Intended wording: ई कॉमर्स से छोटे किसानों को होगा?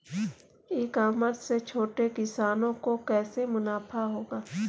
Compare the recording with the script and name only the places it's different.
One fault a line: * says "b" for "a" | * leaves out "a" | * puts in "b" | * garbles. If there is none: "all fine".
* puts in "कैसे मुनाफा"